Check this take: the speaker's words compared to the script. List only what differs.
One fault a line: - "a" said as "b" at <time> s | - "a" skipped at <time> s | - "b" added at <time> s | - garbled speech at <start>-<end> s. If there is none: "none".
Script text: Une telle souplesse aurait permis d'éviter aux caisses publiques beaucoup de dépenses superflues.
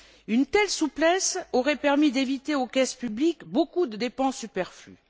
none